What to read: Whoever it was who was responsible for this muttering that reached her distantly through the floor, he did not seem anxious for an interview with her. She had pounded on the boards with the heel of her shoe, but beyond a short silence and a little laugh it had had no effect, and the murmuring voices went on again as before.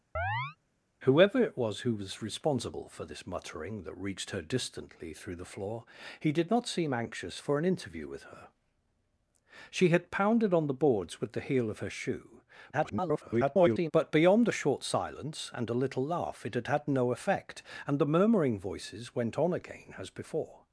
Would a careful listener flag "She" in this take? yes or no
no